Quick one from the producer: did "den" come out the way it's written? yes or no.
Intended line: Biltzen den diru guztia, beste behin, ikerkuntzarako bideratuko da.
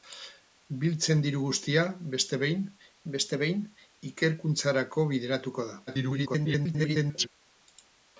no